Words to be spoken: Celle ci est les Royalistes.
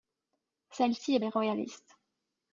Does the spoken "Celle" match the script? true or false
true